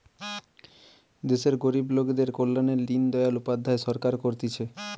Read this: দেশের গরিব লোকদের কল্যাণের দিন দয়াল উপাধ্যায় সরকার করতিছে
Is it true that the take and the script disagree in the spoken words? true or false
false